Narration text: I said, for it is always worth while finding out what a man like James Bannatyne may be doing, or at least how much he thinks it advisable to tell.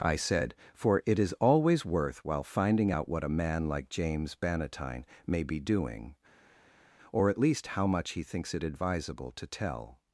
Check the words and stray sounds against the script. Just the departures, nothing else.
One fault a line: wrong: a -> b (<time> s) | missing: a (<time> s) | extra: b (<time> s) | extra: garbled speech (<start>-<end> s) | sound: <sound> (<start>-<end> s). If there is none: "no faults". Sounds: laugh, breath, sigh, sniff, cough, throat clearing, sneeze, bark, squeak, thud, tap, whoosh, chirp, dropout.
no faults